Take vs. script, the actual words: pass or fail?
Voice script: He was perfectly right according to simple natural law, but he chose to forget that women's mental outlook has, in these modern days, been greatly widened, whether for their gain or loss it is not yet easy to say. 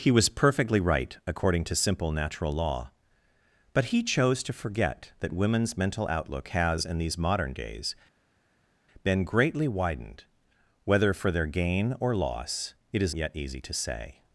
fail